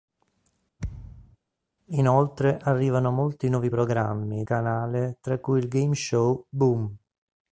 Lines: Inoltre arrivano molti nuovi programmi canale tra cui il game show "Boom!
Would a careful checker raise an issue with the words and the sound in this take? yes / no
yes